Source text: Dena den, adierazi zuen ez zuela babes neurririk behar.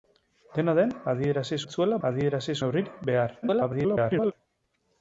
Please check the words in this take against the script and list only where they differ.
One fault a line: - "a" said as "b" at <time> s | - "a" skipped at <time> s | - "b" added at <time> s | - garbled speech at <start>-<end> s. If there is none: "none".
- "zuen" skipped at 1.6 s
- "babes" said as "adierazi" at 2.1 s
- garbled speech at 3.4-4.3 s